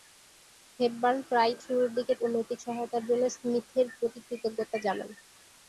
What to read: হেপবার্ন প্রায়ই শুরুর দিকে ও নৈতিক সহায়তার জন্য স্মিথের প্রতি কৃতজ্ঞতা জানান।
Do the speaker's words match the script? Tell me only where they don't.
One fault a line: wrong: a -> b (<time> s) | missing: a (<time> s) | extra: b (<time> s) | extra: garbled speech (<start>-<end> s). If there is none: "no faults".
no faults